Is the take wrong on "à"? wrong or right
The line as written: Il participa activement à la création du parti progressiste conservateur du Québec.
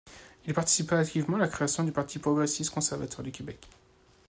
right